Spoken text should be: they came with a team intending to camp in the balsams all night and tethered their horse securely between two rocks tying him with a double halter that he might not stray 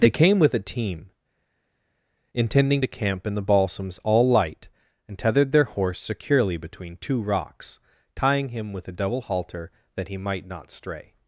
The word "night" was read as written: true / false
false